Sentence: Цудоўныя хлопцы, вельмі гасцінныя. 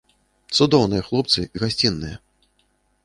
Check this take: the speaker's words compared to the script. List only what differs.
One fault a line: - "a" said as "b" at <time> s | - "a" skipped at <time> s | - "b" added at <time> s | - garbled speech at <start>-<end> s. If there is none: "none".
- "вельмі" skipped at 1.4 s